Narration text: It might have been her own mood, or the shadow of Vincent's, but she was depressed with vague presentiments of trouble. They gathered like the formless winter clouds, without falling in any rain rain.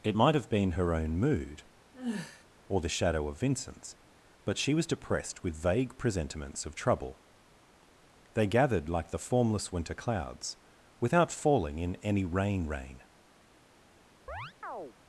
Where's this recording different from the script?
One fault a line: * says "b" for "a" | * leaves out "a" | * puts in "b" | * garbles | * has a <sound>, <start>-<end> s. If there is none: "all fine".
* has a sigh, 1.9-2.4 s
* has a chirp, 14.3-14.9 s